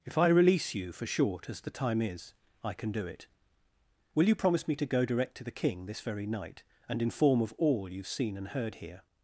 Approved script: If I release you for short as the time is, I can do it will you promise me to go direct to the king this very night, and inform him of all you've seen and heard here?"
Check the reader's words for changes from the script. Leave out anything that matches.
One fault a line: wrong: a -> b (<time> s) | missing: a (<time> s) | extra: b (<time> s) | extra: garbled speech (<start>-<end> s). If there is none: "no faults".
missing: him (7.4 s)